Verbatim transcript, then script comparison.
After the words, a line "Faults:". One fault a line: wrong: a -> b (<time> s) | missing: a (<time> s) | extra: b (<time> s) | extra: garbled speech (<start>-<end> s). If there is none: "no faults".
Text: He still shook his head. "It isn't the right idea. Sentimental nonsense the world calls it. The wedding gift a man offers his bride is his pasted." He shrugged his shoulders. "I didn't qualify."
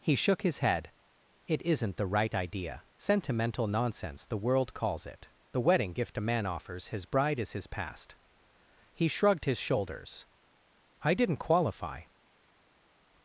He shook his head. "It isn't the right idea. Sentimental nonsense the world calls it. The wedding gift a man offers his bride is his past." He shrugged his shoulders. "I didn't qualify."
Faults:
missing: still (0.1 s)
wrong: pasted -> past (7.7 s)